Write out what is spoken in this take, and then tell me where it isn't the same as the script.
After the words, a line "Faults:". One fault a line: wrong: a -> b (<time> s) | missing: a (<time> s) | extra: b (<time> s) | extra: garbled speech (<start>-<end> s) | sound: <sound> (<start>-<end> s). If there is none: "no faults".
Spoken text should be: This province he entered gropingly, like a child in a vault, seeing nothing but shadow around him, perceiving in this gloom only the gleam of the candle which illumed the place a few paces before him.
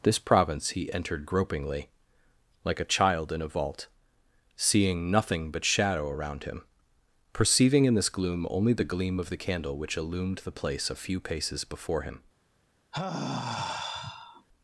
This province he entered gropingly, like a child in a vault, seeing nothing but shadow around him, perceiving in this gloom only the gleam of the candle which illumed the place a few paces before him.
Faults:
sound: sigh (12.9-14.5 s)